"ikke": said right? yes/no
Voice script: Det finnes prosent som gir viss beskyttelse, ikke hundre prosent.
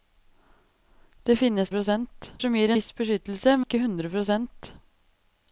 yes